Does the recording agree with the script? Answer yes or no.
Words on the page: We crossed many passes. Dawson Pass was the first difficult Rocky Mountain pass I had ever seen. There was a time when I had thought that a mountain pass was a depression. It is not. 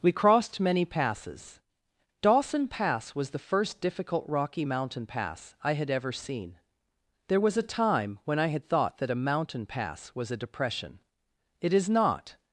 yes